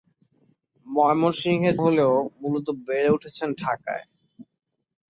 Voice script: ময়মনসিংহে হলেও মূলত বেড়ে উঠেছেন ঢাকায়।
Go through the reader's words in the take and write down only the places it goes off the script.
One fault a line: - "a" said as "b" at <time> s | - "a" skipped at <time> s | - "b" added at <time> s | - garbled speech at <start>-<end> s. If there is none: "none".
none